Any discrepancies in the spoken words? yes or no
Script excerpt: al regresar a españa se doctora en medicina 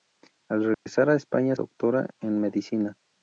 yes